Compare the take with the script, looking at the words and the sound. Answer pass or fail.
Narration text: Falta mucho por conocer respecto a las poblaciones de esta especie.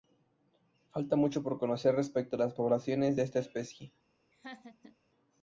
fail